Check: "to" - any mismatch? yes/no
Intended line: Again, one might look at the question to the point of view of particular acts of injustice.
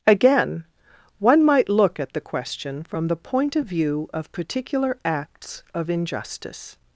yes